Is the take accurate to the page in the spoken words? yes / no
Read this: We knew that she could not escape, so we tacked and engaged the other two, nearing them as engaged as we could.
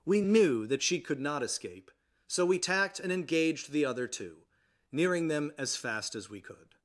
no